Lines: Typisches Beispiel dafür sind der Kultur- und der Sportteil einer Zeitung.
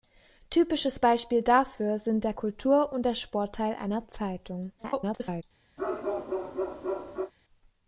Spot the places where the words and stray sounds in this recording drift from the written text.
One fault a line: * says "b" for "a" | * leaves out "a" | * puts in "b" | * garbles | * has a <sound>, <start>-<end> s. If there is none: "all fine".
* garbles
* has a bark, 5.8-7.3 s